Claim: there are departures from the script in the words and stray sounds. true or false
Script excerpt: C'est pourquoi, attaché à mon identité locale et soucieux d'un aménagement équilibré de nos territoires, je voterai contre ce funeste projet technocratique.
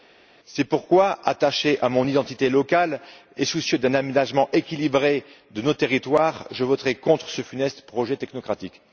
false